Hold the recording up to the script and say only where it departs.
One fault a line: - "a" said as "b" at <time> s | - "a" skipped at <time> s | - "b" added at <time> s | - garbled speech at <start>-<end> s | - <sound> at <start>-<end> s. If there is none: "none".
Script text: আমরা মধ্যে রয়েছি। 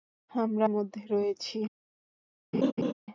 - laugh at 2.5-2.9 s